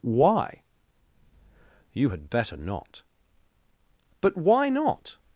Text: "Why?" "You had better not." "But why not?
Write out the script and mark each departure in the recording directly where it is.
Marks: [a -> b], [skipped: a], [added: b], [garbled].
"Why?" "You had better not." "But why not?